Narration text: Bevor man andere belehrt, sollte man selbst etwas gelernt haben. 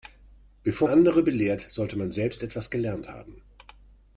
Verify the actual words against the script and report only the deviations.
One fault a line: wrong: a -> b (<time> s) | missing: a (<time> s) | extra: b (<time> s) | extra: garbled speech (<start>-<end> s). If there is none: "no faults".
missing: man (0.9 s)